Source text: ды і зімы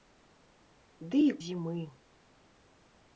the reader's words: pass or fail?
pass